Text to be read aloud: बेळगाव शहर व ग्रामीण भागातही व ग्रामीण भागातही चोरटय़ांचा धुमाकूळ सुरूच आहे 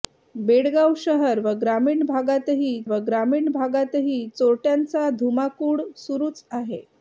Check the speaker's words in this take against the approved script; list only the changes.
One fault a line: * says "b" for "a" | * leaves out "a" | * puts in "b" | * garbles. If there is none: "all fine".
all fine